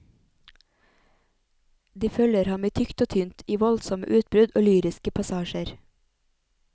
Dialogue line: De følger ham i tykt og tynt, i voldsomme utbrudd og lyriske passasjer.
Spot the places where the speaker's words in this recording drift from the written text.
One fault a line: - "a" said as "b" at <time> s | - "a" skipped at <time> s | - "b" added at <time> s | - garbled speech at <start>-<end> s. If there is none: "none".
none